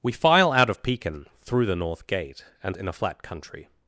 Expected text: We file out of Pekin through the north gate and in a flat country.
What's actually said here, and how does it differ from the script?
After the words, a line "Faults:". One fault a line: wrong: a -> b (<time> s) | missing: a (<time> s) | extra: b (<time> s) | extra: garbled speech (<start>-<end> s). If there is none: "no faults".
We file out of Pekin through the north gate and in a flat country.
Faults:
no faults